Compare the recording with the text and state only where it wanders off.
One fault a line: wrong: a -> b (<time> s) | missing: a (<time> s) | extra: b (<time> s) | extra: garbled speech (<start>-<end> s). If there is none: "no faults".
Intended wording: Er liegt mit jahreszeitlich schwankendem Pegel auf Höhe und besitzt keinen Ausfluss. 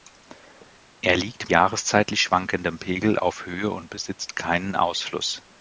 missing: mit (1.5 s)